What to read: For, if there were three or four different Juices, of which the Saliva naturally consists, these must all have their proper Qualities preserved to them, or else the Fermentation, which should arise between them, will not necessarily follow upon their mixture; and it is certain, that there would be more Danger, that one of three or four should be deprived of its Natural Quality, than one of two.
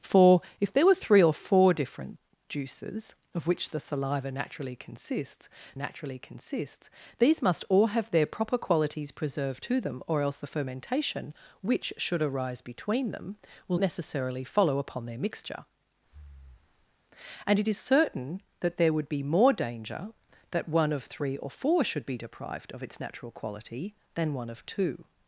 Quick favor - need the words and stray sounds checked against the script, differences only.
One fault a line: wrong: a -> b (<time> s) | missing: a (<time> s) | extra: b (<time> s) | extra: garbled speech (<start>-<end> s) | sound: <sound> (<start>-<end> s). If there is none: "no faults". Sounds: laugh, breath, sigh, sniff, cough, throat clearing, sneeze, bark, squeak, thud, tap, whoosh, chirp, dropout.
extra: naturally consists (5.7 s)
missing: not (13.8 s)
sound: breath (16.0-17.0 s)